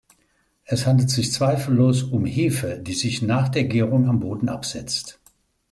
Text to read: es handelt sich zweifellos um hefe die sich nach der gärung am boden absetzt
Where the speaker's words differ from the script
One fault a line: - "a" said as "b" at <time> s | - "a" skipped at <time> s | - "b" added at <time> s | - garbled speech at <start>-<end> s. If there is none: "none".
none